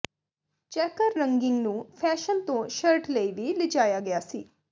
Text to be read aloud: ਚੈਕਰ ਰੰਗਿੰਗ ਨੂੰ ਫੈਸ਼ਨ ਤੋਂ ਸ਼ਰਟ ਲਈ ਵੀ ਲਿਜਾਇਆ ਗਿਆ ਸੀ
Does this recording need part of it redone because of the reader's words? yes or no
no